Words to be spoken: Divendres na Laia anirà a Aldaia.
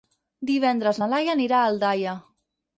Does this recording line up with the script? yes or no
yes